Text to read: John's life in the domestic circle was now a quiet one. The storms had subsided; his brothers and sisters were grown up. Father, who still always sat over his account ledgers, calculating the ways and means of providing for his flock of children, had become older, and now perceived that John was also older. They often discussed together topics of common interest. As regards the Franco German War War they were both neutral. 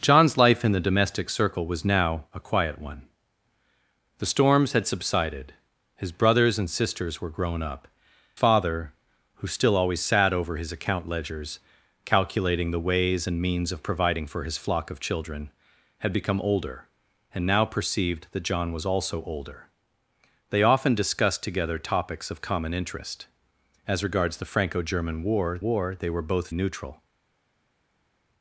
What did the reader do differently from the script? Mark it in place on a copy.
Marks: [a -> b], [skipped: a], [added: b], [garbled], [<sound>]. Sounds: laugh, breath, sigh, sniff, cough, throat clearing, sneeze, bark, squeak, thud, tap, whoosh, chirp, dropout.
John's life in the domestic circle was now a quiet one. The storms had subsided; his brothers and sisters were grown up. Father, who still always sat over his account ledgers, calculating the ways and means of providing for his flock of children, had become older, and now perceived that John was also older. They often discussed together topics of common interest. As regards the Franco German War War they were both neutral.